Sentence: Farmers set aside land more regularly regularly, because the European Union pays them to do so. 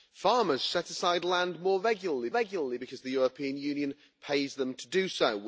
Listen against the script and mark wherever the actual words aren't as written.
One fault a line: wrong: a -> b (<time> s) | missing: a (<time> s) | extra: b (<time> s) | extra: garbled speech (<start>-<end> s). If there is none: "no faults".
no faults